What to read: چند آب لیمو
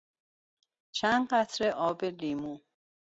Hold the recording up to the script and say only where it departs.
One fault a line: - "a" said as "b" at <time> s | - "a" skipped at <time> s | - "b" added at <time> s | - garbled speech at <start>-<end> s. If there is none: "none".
- "قطره" added at 1.3 s